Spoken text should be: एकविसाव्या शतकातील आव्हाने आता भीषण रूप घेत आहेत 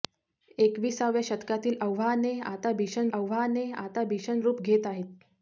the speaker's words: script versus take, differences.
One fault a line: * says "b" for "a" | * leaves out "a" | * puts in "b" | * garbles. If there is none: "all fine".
* puts in "आव्हाने आता भीषण"